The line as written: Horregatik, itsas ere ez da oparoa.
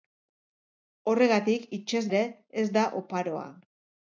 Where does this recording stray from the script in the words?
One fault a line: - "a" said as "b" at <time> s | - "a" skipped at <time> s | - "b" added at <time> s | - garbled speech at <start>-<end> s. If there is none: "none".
none